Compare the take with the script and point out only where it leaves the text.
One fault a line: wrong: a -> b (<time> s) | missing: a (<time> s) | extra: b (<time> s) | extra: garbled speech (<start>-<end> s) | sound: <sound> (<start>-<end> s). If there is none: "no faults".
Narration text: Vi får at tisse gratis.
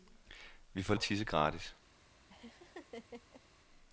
sound: laugh (2.3-3.4 s)